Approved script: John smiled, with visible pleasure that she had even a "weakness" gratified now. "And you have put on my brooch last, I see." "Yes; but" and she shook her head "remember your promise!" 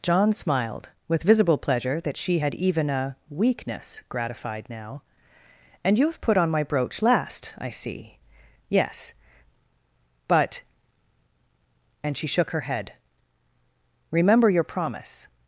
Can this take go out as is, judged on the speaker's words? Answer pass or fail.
pass